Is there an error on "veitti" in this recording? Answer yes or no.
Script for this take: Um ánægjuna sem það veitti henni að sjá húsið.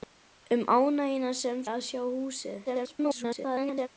yes